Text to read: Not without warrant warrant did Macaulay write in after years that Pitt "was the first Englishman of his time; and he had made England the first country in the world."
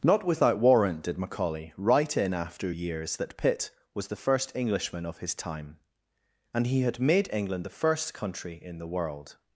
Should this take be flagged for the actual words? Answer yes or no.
yes